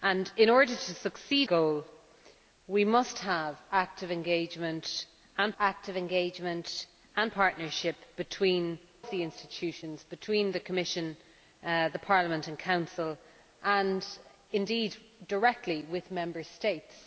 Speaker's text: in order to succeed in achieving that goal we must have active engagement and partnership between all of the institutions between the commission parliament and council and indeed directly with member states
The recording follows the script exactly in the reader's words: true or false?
false